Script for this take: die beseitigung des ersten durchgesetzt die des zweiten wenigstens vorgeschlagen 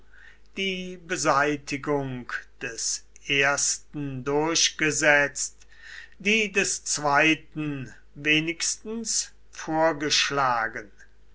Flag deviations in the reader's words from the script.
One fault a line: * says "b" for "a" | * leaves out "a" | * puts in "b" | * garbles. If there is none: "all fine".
all fine